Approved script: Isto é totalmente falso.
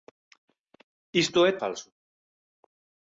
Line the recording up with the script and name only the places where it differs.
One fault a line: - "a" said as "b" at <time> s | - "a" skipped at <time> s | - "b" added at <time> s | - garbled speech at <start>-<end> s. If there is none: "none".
- "totalmente" skipped at 1.5 s